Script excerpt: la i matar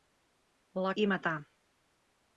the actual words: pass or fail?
pass